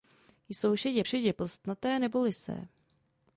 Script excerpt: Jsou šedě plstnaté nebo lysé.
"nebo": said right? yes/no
yes